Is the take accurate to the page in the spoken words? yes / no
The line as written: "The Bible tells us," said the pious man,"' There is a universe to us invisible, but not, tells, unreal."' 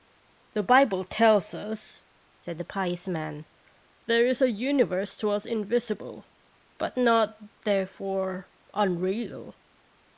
no